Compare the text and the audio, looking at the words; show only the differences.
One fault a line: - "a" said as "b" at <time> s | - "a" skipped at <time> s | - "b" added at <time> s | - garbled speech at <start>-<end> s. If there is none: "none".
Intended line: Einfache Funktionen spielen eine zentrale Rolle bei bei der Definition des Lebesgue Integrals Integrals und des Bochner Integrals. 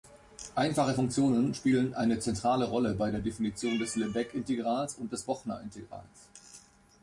- "bei" skipped at 3.1 s
- "Integrals" skipped at 4.9 s